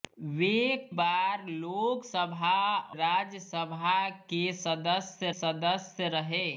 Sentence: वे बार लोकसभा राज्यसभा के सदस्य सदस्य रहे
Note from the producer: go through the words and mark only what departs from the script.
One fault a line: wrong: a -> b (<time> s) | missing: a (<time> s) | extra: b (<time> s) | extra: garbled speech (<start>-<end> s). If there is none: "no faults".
no faults